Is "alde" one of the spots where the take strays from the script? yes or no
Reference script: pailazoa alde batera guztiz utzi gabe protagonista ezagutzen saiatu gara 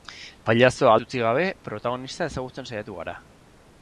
yes